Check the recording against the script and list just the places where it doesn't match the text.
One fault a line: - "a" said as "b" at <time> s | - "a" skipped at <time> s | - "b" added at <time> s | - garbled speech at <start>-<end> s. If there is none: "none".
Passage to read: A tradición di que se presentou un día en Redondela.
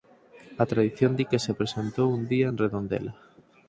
none